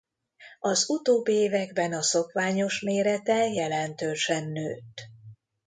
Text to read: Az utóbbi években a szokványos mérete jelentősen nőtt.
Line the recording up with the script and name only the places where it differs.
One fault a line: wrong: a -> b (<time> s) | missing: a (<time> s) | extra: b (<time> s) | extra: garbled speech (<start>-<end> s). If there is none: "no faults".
no faults